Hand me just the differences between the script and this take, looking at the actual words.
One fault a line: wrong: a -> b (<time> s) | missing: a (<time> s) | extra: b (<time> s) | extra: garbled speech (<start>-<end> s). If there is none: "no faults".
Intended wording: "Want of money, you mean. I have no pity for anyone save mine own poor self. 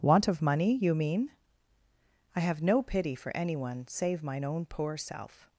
no faults